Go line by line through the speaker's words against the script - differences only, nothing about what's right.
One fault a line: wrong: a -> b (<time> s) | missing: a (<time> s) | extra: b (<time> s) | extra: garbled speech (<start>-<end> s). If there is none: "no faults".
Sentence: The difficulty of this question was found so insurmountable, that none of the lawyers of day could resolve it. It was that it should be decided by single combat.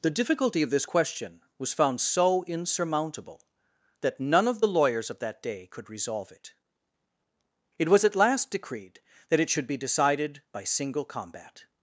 extra: that (5.2 s)
extra: at last decreed (8.0 s)